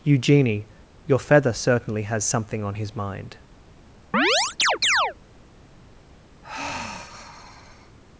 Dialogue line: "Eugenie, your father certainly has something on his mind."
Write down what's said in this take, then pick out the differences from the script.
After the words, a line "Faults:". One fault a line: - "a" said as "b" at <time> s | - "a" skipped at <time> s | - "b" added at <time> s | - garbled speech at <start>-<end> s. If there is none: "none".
"Eugenie, your feather certainly has something on his mind."
Faults:
- "father" said as "feather" at 1.2 s